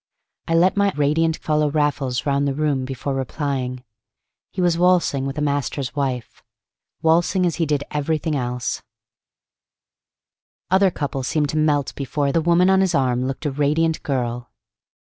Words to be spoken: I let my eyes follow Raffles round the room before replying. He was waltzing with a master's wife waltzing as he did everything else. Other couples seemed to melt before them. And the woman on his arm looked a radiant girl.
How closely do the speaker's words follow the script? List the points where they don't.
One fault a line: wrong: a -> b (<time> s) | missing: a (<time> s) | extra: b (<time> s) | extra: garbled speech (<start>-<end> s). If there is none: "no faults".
wrong: eyes -> radiant (0.9 s)
missing: them And (12.3 s)